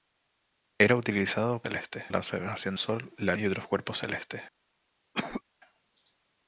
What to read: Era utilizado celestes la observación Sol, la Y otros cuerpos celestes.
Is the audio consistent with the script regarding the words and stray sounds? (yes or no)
no